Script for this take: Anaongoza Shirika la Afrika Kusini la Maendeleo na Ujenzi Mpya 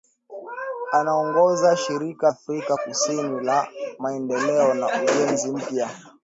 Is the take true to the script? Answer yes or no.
no